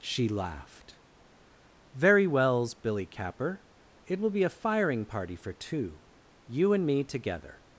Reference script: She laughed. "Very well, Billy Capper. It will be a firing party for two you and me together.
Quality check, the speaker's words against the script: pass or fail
fail